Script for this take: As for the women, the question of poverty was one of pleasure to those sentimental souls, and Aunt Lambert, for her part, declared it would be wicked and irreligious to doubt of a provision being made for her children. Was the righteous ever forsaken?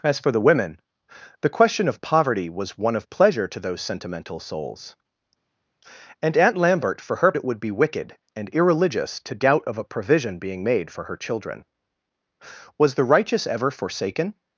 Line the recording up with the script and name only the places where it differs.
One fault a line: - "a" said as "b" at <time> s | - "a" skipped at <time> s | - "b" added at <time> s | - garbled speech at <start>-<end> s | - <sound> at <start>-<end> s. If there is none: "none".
- "part declared" skipped at 7.3 s